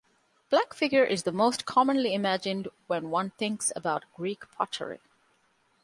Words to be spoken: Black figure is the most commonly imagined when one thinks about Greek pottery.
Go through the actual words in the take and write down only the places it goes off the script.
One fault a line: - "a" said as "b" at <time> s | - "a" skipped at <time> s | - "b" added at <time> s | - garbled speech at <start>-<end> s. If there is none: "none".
none